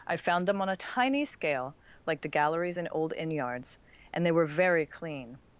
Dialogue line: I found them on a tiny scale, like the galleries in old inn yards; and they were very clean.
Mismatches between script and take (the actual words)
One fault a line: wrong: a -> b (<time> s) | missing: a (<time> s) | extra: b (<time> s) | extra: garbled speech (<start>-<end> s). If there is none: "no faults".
no faults